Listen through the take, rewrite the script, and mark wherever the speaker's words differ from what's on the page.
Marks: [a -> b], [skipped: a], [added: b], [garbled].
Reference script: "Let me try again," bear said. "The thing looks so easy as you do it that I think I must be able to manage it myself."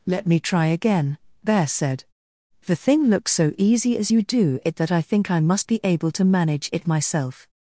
"Let me try again," bear said. "The thing looks so easy as you do it that I think I must be able to manage it myself."